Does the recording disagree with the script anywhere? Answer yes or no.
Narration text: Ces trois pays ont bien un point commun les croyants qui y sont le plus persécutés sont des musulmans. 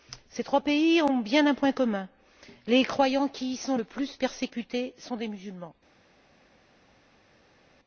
no